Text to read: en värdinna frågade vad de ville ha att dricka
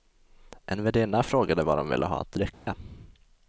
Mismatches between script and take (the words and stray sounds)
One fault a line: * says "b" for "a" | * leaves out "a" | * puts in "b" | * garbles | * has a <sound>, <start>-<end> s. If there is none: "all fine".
* has a dropout, 2.5-2.7 s